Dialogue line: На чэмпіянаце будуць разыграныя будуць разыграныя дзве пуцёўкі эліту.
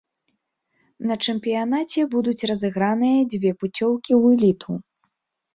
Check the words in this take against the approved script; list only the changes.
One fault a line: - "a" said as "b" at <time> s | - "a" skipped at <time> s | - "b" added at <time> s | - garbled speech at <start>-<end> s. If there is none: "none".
- "будуць разыграныя" skipped at 3.2 s
- "ў" added at 4.2 s